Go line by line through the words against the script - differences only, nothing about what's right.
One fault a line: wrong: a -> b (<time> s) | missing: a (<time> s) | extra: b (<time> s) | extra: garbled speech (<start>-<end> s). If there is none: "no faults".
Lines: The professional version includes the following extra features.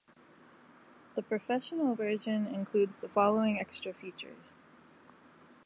no faults